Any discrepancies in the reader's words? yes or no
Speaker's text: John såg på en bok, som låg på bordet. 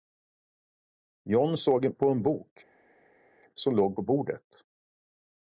no